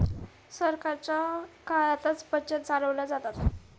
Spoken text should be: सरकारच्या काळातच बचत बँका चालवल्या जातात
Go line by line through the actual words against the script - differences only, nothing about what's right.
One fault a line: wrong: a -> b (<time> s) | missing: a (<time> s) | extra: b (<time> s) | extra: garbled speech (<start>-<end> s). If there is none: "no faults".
missing: बँका (2.6 s)